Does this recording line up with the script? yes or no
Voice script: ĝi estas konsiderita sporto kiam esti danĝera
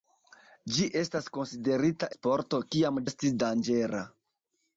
yes